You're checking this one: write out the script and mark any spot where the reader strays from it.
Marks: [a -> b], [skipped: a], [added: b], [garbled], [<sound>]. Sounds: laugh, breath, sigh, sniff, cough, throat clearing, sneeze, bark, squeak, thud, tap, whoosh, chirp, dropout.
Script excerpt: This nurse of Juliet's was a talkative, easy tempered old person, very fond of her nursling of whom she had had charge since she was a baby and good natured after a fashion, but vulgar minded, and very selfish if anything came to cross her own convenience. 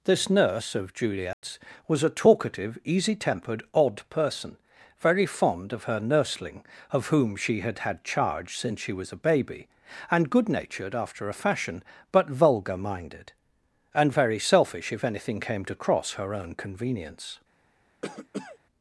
This nurse of Juliet's [dropout] was a talkative, easy tempered [old -> odd] person, very fond of her nursling of whom she had had charge since she was a baby and good natured after a fashion, but vulgar minded, and very selfish if anything came to cross her own convenience. [cough]